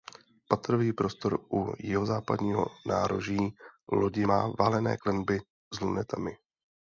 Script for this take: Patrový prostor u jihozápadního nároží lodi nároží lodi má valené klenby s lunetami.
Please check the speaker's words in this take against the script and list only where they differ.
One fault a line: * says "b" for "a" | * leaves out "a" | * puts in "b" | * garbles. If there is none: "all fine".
* leaves out "nároží lodi"